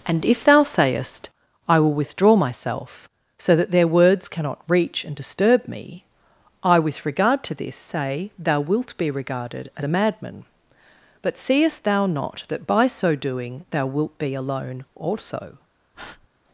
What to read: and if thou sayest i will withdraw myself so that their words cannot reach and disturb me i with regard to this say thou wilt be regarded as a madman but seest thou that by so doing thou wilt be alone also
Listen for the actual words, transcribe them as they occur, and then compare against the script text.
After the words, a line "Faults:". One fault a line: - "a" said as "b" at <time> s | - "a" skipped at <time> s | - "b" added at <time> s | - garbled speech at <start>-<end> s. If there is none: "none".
and if thou sayest i will withdraw myself so that their words cannot reach and disturb me i with regard to this say thou wilt be regarded as a madman but seest thou not that by so doing thou wilt be alone also
Faults:
- "not" added at 12.1 s